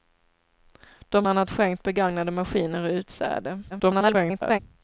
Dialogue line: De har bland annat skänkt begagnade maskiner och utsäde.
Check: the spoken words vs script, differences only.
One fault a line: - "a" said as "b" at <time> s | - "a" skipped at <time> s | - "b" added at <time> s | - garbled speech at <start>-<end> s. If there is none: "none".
- "har bland" skipped at 1.2 s
- garbled speech at 3.7-4.6 s